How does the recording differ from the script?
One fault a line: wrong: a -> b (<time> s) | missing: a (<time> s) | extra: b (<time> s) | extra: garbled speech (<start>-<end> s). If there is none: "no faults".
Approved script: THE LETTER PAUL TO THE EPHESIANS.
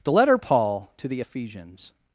no faults